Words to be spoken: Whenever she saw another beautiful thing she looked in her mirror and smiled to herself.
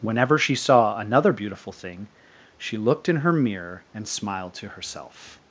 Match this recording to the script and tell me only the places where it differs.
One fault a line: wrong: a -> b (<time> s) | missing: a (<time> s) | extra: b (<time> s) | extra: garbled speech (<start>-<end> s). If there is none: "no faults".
no faults